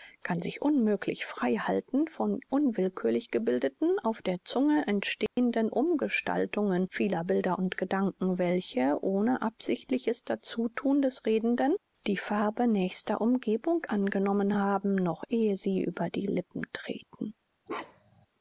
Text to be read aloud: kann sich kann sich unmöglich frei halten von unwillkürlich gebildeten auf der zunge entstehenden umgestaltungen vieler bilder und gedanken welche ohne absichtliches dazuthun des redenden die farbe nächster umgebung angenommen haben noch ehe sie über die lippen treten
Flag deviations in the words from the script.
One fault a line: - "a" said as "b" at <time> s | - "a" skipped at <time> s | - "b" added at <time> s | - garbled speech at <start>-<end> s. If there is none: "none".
- "kann sich" skipped at 0.6 s